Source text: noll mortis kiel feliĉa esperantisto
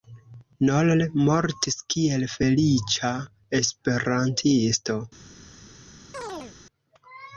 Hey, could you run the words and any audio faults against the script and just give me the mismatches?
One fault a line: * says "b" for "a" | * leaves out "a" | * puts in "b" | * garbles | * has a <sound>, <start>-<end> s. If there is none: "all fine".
* has a chirp, 6.1-6.6 s